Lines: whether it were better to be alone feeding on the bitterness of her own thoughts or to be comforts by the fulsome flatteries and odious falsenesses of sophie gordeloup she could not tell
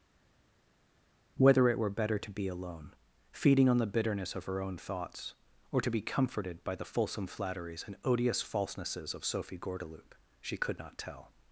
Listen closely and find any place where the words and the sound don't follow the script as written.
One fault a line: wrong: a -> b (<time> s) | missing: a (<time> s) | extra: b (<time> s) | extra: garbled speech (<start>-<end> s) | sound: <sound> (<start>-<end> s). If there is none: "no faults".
wrong: comforts -> comforted (6.0 s)